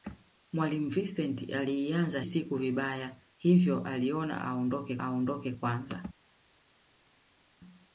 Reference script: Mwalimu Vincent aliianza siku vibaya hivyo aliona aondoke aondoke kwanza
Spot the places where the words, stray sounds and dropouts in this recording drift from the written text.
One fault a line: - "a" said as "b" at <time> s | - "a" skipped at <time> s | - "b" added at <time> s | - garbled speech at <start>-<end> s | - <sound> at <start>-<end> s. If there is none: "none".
none